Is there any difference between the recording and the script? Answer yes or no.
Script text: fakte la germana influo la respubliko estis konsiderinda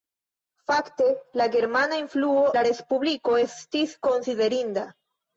no